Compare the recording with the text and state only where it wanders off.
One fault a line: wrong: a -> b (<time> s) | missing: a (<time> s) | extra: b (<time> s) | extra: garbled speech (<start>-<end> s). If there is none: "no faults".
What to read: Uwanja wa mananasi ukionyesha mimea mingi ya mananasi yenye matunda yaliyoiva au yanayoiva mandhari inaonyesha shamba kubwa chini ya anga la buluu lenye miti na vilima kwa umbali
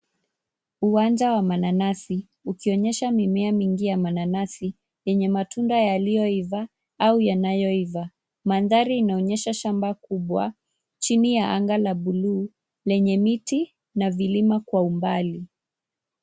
no faults